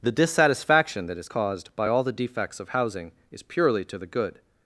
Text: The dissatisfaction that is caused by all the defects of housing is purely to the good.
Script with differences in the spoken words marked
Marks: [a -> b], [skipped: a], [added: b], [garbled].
The dissatisfaction that is caused by all the defects of housing is purely to the good.